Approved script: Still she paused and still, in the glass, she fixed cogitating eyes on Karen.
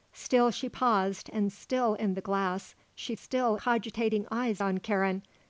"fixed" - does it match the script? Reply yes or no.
no